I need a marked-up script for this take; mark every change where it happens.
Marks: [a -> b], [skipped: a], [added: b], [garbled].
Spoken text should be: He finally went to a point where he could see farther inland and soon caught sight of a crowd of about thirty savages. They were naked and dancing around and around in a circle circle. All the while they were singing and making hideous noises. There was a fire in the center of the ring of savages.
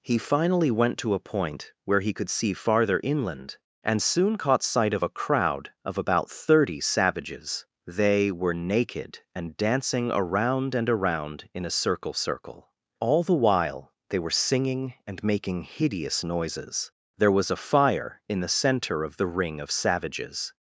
He finally went to a point where he could see farther inland and soon caught sight of a crowd of about thirty savages. They were naked and dancing around and around in a circle circle. All the while they were singing and making hideous noises. There was a fire in the center of the ring of savages.